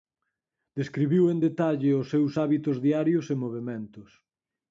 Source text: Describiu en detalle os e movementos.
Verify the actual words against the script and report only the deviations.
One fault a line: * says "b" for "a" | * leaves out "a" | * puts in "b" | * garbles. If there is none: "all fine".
* puts in "seus hábitos diarios"